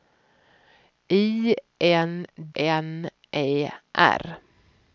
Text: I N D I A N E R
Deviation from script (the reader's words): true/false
true